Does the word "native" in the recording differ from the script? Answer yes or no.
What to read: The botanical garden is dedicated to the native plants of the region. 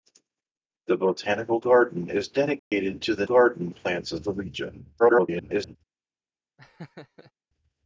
yes